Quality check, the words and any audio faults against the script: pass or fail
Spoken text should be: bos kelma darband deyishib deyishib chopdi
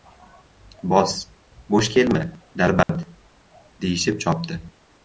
fail